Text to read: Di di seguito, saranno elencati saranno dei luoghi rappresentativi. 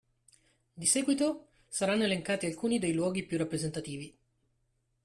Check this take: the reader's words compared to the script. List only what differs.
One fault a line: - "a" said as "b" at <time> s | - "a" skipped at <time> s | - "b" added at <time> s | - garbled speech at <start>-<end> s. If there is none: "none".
- "di" skipped at 0.9 s
- "saranno" said as "alcuni" at 2.4 s
- "più" added at 3.3 s